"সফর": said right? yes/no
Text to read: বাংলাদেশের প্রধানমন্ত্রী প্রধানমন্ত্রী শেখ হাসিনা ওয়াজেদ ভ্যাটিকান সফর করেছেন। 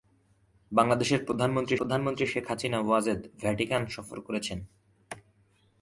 yes